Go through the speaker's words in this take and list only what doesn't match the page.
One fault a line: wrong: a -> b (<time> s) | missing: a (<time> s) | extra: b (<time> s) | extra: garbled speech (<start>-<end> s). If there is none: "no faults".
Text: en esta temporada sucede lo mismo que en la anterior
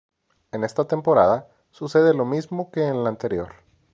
no faults